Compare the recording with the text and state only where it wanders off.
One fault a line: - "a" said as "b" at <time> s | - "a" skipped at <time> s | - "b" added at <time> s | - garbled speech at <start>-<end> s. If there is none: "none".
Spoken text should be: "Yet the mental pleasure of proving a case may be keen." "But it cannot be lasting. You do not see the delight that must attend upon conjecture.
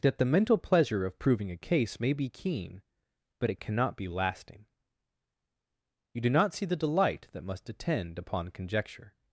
- "Yet" said as "That" at 0.0 s